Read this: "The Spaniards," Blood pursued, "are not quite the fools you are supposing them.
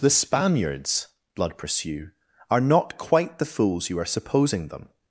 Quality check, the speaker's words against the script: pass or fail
fail